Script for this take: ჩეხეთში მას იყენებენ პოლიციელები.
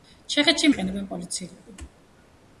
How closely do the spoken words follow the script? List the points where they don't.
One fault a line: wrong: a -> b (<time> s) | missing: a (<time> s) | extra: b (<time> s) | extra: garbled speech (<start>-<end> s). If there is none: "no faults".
missing: მას (0.7 s)